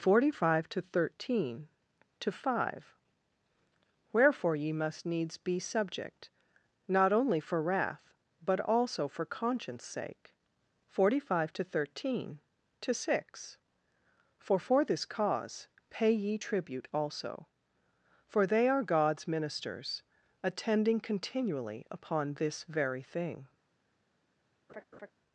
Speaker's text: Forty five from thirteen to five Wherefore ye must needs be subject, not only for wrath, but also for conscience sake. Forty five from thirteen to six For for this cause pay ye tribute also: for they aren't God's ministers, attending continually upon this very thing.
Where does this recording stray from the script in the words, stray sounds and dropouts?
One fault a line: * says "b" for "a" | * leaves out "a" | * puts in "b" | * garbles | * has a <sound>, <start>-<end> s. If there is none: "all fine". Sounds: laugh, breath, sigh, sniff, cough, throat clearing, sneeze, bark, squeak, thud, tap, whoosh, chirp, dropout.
* says "to" for "from"
* says "to" for "from"
* says "are" for "aren't"
* has a laugh, 24.7-25.1 s